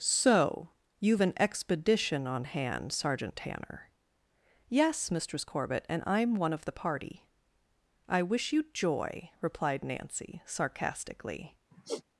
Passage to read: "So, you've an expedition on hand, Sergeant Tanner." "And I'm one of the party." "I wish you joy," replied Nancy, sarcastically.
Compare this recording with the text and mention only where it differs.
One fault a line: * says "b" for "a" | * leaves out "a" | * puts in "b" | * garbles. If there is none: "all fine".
* puts in "Yes Mistress Corbett"